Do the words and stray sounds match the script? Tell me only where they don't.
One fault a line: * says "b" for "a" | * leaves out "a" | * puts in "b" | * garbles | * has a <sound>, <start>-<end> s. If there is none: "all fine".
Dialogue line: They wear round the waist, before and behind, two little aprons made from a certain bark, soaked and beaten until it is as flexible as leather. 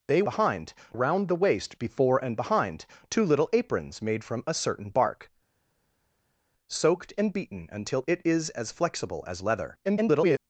* says "behind" for "wear"
* garbles